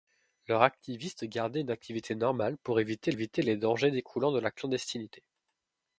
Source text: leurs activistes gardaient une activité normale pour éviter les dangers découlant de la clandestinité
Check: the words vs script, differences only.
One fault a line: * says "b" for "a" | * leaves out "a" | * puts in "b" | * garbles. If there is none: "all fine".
* puts in "éviter"